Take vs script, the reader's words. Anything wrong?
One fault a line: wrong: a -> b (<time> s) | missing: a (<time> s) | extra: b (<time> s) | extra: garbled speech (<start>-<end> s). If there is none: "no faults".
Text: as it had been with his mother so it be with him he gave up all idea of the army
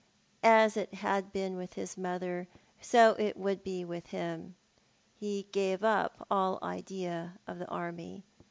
extra: would (3.4 s)